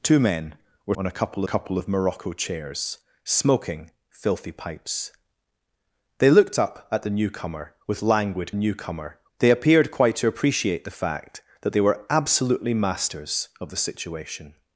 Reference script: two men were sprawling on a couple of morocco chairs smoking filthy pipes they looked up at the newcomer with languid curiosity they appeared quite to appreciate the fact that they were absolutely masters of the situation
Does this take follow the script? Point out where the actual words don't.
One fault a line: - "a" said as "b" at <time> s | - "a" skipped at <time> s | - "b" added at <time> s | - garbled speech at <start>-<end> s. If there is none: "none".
- "sprawling" skipped at 0.9 s
- "couple" added at 1.4 s
- "curiosity" said as "newcomer" at 8.6 s